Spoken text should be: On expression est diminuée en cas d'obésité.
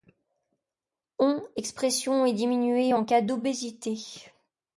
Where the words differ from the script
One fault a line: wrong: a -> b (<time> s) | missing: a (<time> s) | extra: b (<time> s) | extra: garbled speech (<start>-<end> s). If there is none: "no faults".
no faults